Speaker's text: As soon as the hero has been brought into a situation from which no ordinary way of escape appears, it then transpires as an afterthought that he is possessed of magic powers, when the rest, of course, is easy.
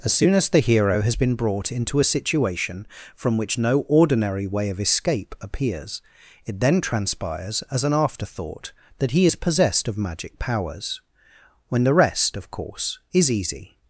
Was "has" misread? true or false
false